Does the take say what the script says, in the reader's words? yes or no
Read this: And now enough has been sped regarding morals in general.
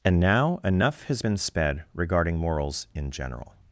yes